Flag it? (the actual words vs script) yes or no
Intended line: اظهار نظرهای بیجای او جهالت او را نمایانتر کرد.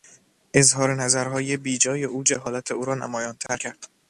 no